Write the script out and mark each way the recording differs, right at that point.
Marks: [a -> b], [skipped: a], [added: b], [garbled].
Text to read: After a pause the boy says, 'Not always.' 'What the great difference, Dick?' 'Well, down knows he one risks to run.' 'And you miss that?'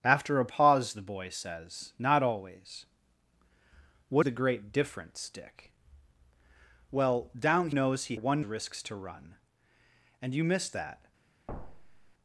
After a pause the boy says, 'Not always.' 'What the great difference, Dick?' 'Well, down knows he one risks to run.' 'And you miss that?'